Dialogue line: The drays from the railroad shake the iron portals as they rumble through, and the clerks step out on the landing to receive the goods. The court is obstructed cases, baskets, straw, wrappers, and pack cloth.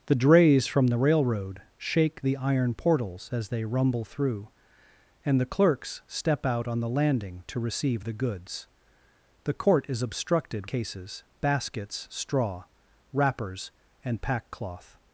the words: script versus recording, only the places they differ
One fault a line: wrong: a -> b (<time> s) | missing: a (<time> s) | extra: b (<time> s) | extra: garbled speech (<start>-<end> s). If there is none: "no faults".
no faults